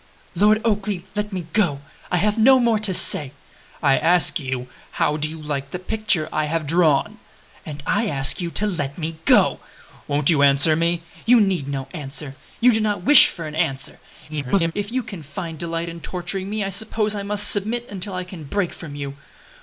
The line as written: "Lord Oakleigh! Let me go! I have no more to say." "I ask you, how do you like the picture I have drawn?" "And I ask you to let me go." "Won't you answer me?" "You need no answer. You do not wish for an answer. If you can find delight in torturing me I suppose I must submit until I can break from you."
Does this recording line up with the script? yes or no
no